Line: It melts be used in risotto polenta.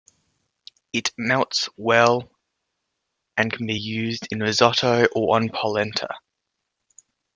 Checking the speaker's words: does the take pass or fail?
fail